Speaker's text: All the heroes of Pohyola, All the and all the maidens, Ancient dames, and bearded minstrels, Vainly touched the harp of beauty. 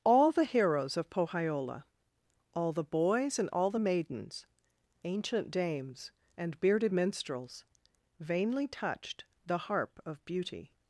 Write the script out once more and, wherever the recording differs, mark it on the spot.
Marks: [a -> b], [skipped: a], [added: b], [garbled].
All the heroes of Pohyola, All the [added: boys] and all the maidens, Ancient dames, and bearded minstrels, Vainly touched the harp of beauty.